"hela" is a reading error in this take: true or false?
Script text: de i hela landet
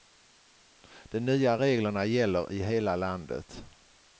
false